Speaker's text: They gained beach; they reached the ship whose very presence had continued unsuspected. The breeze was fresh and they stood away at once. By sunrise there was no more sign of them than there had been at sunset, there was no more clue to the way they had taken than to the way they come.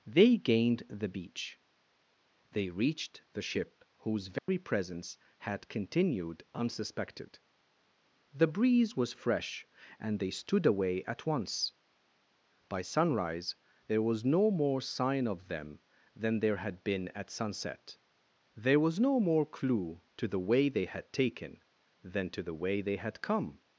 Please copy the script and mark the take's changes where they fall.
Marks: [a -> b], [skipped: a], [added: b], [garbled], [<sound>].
They gained [added: the] beach; they reached the ship whose very [dropout] presence had continued unsuspected. The breeze was fresh and they stood away at once. By sunrise there was no more sign of them than there had been at sunset, there was no more clue to the way they had taken than to the way they [added: had] come.